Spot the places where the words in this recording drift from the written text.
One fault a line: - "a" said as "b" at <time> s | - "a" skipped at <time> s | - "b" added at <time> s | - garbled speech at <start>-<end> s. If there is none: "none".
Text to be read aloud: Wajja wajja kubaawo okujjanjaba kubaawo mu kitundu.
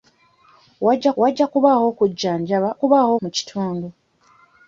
none